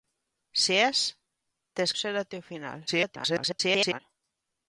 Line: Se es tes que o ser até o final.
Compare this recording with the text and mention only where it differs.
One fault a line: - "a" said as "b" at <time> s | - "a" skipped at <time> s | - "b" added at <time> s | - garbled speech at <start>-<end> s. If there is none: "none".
- "que" skipped at 1.9 s
- garbled speech at 2.9-4.0 s